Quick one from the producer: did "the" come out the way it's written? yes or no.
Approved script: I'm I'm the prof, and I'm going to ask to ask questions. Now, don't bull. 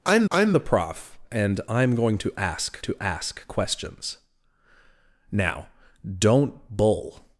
yes